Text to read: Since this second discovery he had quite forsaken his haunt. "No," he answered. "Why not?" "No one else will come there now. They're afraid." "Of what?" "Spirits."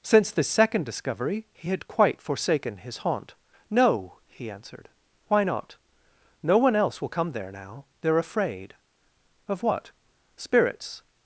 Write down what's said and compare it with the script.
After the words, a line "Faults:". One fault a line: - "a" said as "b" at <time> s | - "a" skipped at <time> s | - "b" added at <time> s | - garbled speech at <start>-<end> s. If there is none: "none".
Since this second discovery he had quite forsaken his haunt. "No," he answered. "Why not?" "No one else will come there now. They're afraid." "Of what?" "Spirits."
Faults:
none